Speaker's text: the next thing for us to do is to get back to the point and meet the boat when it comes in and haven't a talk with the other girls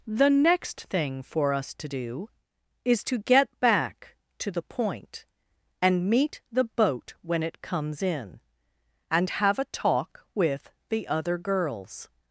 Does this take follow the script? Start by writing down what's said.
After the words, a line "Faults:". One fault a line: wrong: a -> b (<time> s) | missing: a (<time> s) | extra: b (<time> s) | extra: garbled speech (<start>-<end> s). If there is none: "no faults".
the next thing for us to do is to get back to the point and meet the boat when it comes in and have a talk with the other girls
Faults:
wrong: haven't -> have (9.3 s)